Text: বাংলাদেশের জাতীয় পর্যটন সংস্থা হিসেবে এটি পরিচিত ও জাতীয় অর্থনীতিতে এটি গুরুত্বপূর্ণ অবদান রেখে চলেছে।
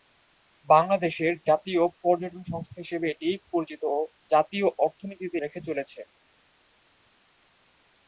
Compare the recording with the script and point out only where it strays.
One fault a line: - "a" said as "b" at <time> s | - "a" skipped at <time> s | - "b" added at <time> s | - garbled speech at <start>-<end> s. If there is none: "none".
- "এটি গুরুত্বপূর্ণ অবদান" skipped at 5.4 s